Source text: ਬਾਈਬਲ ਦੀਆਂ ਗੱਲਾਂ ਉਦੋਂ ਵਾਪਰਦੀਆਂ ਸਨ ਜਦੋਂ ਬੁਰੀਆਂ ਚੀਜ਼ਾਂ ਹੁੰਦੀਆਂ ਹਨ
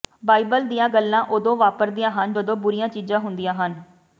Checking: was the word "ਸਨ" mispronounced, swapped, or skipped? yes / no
yes